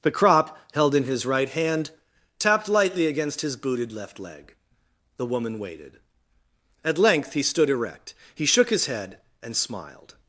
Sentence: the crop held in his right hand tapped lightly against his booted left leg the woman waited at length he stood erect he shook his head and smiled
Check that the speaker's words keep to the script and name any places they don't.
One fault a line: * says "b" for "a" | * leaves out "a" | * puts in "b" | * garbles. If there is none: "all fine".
all fine